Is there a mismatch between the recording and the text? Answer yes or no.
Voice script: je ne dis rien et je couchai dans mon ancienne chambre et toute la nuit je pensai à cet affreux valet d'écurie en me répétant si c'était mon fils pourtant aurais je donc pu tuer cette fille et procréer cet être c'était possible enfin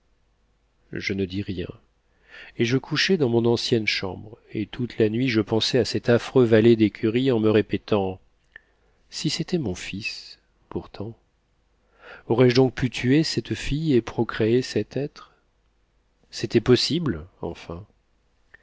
no